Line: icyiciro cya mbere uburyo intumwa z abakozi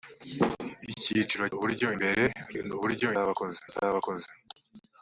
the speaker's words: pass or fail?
fail